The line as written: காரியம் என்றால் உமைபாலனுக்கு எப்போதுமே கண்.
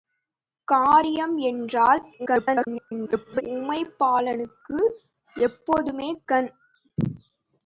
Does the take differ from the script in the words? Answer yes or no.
yes